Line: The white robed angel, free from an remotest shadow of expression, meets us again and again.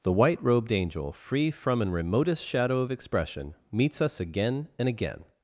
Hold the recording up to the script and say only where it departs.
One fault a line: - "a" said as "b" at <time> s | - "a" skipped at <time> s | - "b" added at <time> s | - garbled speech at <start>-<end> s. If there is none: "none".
none